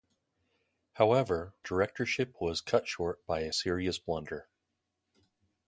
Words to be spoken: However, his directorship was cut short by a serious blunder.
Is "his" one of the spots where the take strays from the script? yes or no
yes